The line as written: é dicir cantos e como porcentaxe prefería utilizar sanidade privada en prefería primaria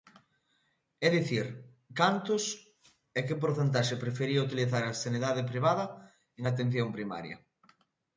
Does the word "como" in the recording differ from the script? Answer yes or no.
yes